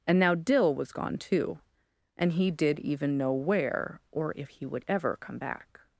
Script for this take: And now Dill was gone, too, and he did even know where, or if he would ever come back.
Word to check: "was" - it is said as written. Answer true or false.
true